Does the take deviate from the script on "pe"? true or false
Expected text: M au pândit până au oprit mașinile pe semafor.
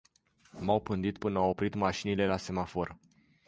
true